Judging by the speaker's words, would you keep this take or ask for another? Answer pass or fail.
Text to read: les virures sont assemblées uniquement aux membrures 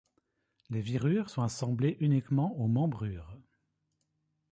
pass